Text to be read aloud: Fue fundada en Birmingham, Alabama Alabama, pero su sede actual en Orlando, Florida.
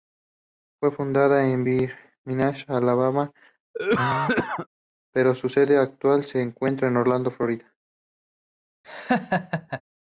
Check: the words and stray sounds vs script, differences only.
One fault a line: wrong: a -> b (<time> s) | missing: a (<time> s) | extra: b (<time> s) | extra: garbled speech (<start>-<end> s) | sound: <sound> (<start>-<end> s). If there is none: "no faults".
missing: Alabama (3.3 s)
sound: cough (3.7-4.7 s)
extra: se encuentra (6.2 s)
sound: laugh (8.8-9.8 s)